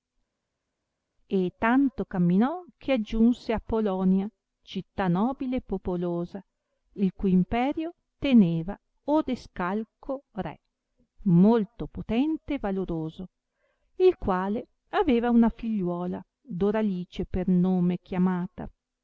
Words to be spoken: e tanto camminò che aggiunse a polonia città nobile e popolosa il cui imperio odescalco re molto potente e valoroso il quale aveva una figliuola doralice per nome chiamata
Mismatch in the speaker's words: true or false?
true